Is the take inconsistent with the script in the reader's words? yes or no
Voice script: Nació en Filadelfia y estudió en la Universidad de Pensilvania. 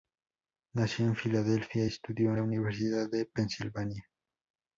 yes